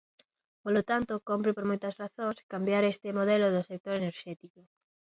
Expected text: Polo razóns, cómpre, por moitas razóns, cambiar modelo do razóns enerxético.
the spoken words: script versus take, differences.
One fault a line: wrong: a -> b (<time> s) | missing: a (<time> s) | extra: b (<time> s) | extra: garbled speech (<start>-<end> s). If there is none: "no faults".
wrong: razóns -> tanto (0.9 s)
extra: este (2.9 s)
wrong: razóns -> sector (3.7 s)